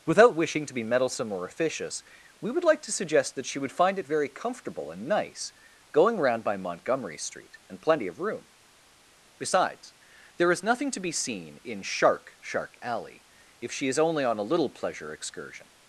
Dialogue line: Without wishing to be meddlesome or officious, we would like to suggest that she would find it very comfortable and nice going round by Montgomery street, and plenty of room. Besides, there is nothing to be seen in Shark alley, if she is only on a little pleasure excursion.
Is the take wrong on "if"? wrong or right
right